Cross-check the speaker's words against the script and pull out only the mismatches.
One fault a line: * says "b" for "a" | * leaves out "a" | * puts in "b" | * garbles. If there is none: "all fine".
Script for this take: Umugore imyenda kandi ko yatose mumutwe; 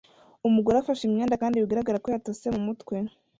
* puts in "afashe"
* puts in "bigaragara"